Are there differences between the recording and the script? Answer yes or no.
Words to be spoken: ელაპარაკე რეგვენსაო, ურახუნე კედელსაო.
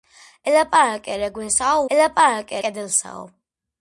yes